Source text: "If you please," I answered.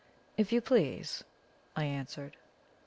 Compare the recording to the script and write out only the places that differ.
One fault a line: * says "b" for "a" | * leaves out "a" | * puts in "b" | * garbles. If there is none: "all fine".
all fine